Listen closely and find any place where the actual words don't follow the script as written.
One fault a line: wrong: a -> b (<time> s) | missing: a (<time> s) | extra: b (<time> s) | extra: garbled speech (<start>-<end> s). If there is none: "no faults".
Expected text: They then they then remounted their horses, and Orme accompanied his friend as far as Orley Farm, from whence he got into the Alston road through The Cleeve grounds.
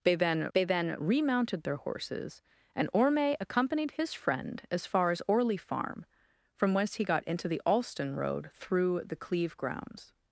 no faults